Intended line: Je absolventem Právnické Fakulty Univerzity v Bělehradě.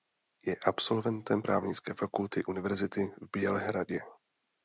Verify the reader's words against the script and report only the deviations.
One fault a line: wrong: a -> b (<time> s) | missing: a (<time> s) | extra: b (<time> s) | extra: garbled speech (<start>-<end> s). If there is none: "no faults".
no faults